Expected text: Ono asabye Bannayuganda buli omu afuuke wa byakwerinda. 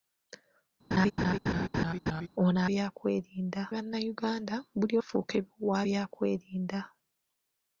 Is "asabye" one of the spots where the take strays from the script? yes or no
yes